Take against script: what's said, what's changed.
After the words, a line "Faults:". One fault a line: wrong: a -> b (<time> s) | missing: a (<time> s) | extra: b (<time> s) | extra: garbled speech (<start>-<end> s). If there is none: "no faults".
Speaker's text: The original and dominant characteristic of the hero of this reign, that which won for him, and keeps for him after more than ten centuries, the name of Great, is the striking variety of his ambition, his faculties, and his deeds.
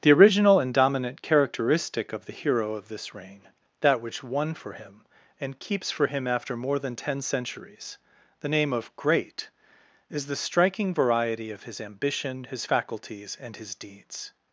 The original and dominant characteristic of the hero of this reign, that which won for him, and keeps for him after more than ten centuries, the name of Great, is the striking variety of his ambition, his faculties, and his deeds.
Faults:
no faults